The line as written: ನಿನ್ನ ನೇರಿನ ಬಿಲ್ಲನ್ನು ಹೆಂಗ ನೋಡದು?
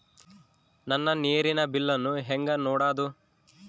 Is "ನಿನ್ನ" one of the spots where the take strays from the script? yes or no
yes